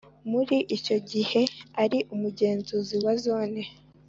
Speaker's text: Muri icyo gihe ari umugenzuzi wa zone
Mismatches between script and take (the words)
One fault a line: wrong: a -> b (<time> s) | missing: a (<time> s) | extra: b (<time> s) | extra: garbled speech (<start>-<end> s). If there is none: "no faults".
no faults